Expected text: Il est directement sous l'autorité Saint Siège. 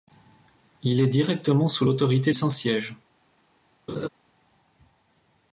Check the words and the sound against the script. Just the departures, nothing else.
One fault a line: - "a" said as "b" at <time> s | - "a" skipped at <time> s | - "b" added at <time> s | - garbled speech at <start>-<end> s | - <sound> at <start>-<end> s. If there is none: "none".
- laugh at 3.9-4.1 s